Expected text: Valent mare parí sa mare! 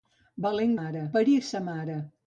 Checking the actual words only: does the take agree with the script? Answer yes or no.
yes